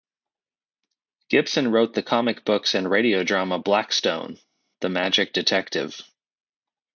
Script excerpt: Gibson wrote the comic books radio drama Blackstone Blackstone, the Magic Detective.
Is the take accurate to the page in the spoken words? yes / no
no